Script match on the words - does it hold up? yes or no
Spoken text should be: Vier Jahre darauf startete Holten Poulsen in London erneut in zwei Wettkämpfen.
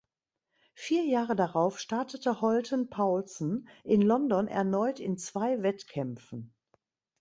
yes